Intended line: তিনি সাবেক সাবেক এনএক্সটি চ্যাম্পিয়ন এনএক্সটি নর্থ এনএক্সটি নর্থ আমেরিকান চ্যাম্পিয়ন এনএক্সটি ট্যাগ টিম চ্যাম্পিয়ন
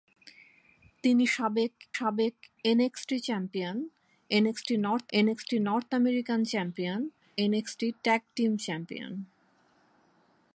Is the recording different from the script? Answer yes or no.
no